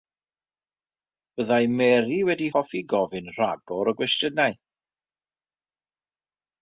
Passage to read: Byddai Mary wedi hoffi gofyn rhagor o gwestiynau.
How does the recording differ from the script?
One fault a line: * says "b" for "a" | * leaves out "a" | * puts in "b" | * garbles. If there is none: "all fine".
all fine